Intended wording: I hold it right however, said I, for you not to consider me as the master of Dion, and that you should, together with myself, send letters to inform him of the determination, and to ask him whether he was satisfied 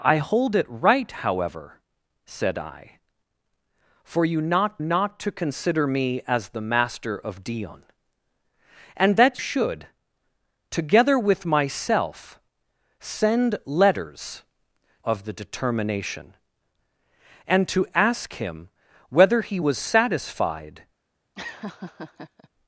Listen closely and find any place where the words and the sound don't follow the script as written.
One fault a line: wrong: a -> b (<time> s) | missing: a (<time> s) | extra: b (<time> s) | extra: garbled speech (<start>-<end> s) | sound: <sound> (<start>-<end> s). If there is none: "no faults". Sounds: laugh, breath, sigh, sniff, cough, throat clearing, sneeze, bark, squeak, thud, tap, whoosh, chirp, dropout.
extra: not (4.8 s)
missing: you (9.4 s)
missing: to inform him (14.4 s)
sound: laugh (21.4-22.5 s)